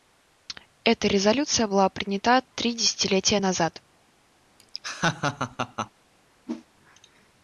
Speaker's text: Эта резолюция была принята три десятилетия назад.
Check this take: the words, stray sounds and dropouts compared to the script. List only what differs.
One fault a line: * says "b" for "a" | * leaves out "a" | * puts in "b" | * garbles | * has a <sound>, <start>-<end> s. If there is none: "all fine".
* has a laugh, 4.6-5.9 s
* has a whoosh, 6.5-6.7 s